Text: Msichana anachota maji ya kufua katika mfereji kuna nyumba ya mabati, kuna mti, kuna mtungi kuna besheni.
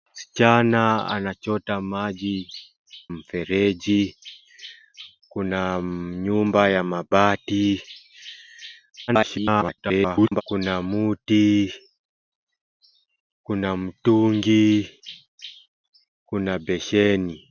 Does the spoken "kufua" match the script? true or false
false